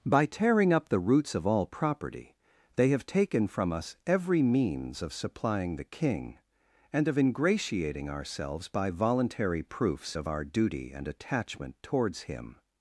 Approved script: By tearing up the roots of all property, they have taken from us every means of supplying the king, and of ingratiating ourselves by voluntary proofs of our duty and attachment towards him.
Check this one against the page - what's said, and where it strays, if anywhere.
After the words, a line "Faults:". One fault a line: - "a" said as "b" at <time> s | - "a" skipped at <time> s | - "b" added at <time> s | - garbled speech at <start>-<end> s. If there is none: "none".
By tearing up the roots of all property, they have taken from us every means of supplying the king, and of ingratiating ourselves by voluntary proofs of our duty and attachment towards him.
Faults:
none